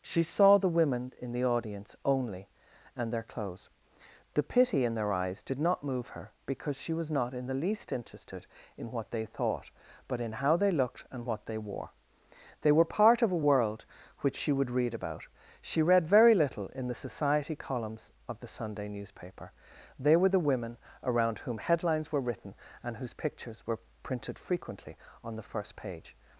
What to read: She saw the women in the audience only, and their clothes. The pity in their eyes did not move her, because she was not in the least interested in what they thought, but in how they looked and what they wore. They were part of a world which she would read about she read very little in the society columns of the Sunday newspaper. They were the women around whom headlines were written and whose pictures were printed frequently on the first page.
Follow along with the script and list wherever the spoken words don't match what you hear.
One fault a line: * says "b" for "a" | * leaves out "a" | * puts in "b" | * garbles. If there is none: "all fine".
all fine